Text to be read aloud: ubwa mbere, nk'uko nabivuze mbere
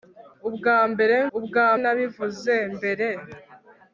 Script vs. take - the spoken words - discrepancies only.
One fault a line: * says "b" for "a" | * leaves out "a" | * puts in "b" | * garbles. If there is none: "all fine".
* says "ubwa" for "nk'uko"